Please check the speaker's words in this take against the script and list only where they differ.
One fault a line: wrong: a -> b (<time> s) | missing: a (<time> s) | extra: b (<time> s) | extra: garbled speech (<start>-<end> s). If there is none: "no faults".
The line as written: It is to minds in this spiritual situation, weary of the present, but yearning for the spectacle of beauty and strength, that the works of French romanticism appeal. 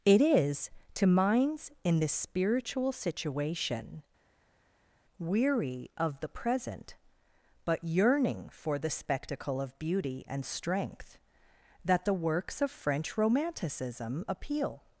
no faults